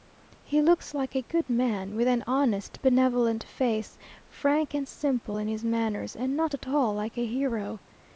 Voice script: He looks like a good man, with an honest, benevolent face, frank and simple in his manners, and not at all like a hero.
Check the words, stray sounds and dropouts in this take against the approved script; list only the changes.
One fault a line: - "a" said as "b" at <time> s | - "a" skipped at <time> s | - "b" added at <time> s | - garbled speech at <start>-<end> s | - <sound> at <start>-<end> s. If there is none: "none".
none